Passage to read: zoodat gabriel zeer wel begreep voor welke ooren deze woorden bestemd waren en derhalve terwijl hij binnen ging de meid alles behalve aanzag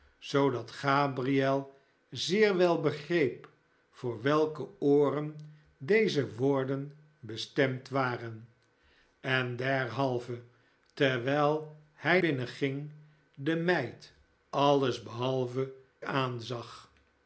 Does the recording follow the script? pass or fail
pass